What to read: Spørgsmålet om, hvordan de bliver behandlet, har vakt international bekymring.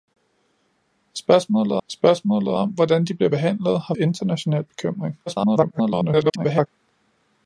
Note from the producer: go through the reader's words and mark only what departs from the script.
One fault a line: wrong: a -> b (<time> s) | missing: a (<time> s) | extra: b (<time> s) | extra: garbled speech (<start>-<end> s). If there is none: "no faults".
extra: spørgsmålet (1.9 s)
missing: vakt (3.9 s)
extra: garbled speech (5.3-6.7 s)